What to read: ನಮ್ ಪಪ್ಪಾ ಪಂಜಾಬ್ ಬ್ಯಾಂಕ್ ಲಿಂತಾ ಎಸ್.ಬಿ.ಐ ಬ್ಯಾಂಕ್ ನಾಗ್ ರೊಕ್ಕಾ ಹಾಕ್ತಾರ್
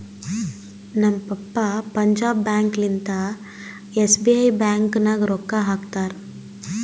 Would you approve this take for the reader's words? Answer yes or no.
yes